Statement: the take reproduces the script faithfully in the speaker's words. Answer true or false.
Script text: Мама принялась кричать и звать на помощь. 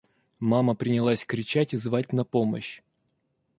true